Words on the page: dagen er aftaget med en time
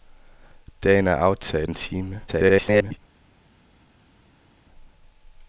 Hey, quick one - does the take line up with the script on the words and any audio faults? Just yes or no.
no